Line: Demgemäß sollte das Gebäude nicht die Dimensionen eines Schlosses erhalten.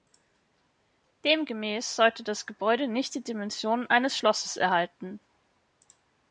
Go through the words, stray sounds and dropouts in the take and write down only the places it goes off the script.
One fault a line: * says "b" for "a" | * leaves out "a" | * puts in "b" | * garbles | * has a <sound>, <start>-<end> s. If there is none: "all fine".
all fine